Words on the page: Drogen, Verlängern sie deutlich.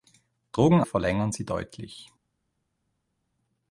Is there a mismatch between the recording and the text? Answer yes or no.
no